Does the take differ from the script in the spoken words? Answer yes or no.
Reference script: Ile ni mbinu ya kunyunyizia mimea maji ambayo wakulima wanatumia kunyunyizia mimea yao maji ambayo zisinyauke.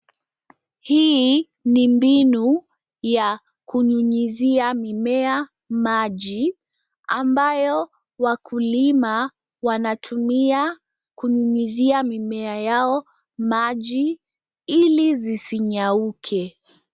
yes